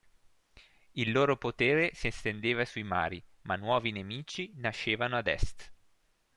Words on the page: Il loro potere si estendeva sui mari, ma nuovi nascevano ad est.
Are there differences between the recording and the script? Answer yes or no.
yes